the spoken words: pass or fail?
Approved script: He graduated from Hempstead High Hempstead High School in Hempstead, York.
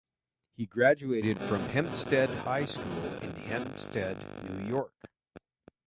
fail